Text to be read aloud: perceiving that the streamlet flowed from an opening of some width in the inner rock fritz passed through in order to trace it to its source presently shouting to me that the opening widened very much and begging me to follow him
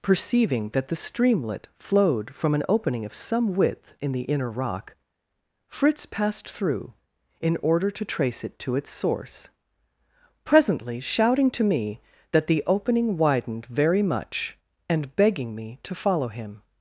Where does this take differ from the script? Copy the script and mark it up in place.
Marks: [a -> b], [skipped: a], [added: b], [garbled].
perceiving that the streamlet flowed from an opening of some width in the inner rock fritz passed through in order to trace it to its source presently shouting to me that the opening widened very much and begging me to follow him